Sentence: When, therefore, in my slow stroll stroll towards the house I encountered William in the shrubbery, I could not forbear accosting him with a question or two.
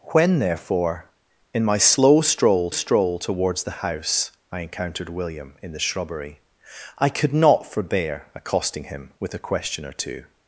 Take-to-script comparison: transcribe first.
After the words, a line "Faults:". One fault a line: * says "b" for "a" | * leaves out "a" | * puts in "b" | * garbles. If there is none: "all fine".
When, therefore, in my slow stroll stroll towards the house I encountered William in the shrubbery, I could not forbear accosting him with a question or two.
Faults:
all fine